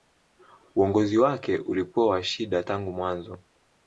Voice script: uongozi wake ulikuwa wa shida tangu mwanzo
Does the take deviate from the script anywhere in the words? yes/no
no